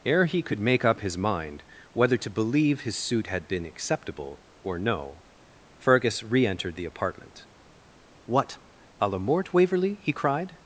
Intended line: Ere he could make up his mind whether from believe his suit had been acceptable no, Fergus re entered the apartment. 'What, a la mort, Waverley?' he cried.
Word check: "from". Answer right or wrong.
wrong